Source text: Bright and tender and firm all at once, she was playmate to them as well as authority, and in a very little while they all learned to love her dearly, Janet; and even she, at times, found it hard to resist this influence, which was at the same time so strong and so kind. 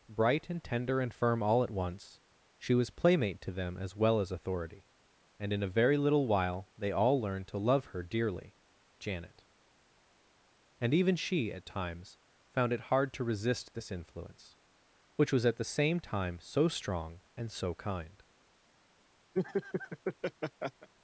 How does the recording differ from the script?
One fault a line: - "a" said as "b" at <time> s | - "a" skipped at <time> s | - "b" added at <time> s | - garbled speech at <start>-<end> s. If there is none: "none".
none